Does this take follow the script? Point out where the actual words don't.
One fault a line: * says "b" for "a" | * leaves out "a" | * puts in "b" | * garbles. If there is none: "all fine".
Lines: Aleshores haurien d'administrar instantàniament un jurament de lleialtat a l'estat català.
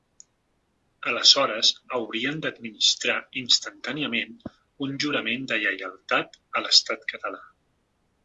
all fine